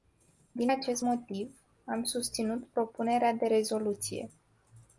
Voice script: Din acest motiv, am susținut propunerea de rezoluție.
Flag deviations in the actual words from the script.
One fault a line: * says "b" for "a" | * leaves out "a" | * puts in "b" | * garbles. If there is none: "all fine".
all fine